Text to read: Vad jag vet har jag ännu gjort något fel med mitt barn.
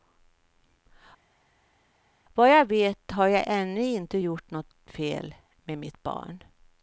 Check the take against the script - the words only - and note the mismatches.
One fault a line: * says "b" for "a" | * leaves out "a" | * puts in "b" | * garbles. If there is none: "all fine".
* puts in "inte"